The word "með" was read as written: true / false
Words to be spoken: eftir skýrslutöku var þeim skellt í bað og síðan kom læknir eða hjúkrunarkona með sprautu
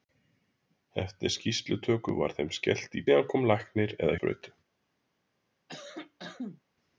false